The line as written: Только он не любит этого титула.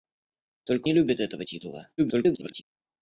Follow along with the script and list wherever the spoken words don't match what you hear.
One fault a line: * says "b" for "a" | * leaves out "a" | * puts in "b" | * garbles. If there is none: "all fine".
* leaves out "он"
* garbles